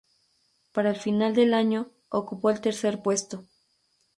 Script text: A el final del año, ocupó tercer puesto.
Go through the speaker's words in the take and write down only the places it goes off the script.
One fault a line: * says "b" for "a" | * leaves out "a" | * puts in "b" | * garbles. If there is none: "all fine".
* says "Para" for "A"
* puts in "el"